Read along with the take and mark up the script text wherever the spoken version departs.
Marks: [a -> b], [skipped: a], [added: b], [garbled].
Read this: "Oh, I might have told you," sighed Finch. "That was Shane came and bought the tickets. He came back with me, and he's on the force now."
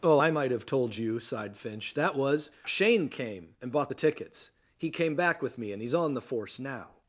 "Oh, I might have told you," sighed Finch. "That was Shane came and bought the tickets. He came back with me, and he's on the force now."